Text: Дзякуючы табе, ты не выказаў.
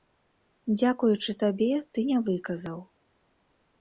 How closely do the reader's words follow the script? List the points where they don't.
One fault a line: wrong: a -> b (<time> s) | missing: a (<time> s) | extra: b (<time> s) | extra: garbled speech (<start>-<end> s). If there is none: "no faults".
no faults